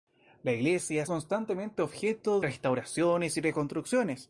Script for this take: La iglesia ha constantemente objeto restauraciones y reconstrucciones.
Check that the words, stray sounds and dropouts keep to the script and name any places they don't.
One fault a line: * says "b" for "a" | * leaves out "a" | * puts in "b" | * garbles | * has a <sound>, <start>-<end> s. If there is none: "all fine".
all fine